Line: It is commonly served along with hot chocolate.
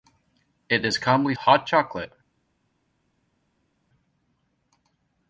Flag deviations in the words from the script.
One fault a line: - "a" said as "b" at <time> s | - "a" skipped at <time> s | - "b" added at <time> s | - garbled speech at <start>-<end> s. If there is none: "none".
- "served along with" skipped at 1.4 s